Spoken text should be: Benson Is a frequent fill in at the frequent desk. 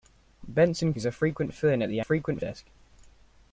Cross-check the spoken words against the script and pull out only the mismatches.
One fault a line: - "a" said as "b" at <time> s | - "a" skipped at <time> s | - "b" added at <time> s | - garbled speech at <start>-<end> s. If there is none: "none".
none